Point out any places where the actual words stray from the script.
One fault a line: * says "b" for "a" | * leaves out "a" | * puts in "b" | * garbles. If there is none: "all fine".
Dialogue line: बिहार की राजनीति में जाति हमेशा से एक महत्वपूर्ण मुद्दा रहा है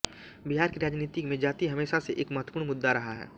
all fine